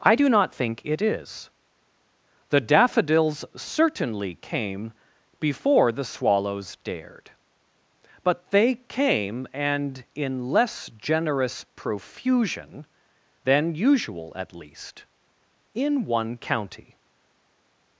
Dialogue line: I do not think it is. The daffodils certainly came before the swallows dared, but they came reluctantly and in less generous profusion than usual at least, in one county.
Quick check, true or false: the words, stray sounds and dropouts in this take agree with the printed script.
false